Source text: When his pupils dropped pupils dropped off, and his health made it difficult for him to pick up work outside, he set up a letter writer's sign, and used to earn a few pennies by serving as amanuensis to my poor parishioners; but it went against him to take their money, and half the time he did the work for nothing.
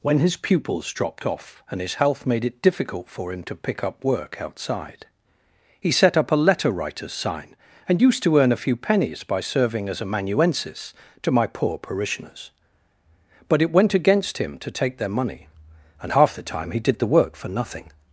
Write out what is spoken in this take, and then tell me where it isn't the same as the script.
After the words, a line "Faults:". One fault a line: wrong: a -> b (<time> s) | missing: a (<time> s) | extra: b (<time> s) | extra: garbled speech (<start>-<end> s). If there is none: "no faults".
When his pupils dropped off, and his health made it difficult for him to pick up work outside, he set up a letter writer's sign, and used to earn a few pennies by serving as amanuensis to my poor parishioners; but it went against him to take their money, and half the time he did the work for nothing.
Faults:
missing: pupils dropped (1.3 s)